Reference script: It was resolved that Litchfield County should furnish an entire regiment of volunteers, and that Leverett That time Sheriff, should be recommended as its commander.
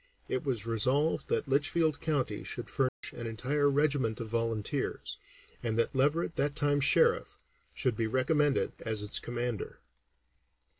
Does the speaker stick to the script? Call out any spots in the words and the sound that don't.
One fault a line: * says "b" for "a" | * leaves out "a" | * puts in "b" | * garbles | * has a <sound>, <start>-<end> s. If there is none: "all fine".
* has a dropout, 2.9-3.0 s